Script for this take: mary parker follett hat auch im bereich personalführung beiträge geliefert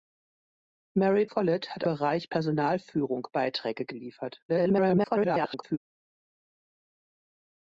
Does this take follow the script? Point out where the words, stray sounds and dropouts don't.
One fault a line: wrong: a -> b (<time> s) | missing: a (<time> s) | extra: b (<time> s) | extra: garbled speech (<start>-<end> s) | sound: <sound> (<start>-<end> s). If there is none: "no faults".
missing: parker (1.3 s)
missing: auch im (1.8 s)
extra: garbled speech (4.5-5.8 s)